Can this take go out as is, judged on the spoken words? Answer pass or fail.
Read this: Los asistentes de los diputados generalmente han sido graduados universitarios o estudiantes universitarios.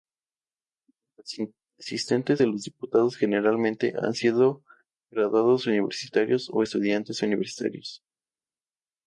pass